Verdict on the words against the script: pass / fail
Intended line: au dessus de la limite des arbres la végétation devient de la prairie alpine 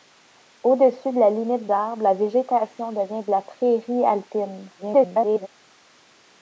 fail